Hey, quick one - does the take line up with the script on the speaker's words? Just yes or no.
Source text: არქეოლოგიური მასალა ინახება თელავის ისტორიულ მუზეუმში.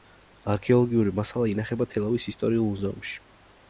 yes